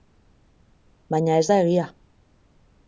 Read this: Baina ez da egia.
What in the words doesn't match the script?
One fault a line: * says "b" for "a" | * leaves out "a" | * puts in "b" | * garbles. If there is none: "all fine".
all fine